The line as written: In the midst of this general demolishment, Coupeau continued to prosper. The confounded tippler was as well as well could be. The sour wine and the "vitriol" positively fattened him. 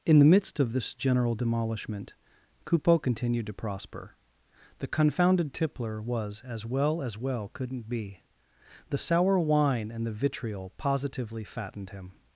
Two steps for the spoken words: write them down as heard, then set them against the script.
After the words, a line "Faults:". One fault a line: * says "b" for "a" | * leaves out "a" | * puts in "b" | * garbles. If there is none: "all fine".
In the midst of this general demolishment, Coupeau continued to prosper. The confounded tippler was as well as well couldn't be. The sour wine and the "vitriol" positively fattened him.
Faults:
* says "couldn't" for "could"